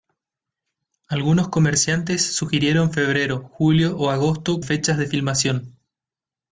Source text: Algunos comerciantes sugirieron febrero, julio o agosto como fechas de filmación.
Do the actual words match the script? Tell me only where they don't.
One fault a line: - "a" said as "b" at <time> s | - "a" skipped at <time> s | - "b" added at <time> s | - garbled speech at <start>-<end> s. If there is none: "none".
- "como" skipped at 4.6 s